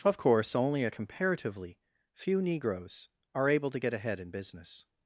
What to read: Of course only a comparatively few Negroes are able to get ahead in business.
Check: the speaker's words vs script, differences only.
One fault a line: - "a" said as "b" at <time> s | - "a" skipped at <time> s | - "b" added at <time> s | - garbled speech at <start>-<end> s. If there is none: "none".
none